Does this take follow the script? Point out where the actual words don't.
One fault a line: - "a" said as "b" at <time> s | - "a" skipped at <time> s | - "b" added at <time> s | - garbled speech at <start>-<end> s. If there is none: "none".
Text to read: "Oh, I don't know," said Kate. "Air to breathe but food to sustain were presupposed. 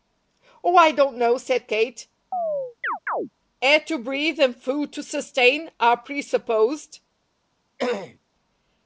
- "but" said as "and" at 4.4 s
- "were" said as "are" at 5.8 s